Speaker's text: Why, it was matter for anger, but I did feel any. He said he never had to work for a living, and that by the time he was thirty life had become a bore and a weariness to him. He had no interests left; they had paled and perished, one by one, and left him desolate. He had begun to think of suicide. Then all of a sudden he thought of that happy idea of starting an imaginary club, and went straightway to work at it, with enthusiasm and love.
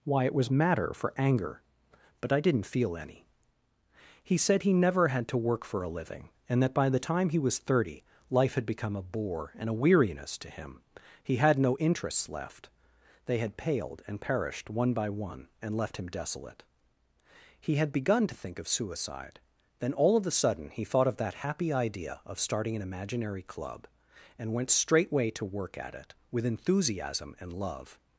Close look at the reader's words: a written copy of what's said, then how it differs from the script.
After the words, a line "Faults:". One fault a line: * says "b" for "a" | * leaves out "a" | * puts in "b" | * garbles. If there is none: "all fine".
Why, it was matter for anger, but I didn't feel any. He said he never had to work for a living, and that by the time he was thirty life had become a bore and a weariness to him. He had no interests left; they had paled and perished, one by one, and left him desolate. He had begun to think of suicide. Then all of a sudden he thought of that happy idea of starting an imaginary club, and went straightway to work at it, with enthusiasm and love.
Faults:
* says "didn't" for "did"